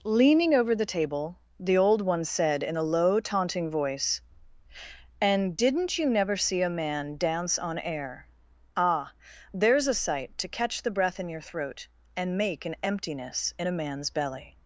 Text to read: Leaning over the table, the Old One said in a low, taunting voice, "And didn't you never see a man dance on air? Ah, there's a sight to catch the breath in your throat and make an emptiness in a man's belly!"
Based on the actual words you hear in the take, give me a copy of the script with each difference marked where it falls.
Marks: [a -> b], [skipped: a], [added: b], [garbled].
Leaning over the table, the Old One said in a low, taunting voice, "And didn't you never see a man dance on air? Ah, there's a sight to catch the breath in your throat and make an emptiness in a man's belly!"